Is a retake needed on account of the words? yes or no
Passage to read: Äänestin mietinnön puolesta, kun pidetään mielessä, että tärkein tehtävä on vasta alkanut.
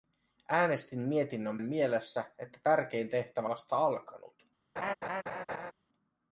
yes